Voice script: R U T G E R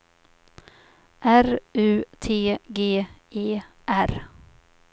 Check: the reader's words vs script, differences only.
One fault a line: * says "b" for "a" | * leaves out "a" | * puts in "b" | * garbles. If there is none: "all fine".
all fine